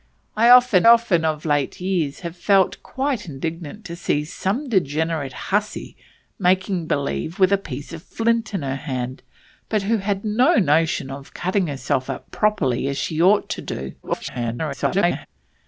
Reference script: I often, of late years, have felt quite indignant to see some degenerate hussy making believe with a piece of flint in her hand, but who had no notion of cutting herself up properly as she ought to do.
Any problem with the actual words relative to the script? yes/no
yes